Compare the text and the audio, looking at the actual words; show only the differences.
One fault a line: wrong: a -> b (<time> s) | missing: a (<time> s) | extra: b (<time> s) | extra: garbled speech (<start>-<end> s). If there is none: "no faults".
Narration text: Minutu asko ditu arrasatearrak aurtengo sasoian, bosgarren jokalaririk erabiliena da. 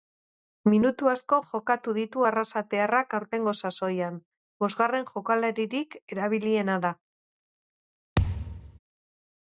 extra: jokatu (1.5 s)